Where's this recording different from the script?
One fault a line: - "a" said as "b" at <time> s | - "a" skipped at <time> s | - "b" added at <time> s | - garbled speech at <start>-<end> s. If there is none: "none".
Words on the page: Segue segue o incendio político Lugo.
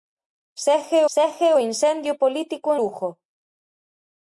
none